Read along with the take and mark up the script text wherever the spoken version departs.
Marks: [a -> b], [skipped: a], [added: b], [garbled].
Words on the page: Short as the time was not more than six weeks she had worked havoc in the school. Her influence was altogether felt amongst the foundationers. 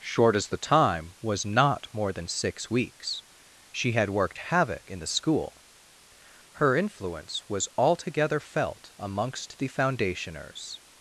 Short as the time was not more than six weeks she had worked havoc in the school. Her influence was altogether felt amongst the foundationers.